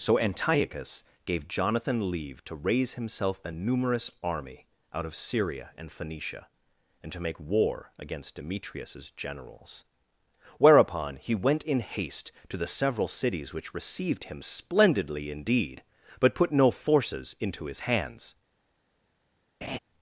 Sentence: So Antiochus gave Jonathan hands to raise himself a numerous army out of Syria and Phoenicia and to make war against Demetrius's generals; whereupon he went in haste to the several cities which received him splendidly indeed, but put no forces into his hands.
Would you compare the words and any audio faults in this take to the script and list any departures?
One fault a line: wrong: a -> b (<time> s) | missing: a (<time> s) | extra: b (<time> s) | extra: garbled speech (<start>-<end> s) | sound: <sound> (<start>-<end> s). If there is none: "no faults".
wrong: hands -> leave (2.1 s)
sound: laugh (19.6-19.8 s)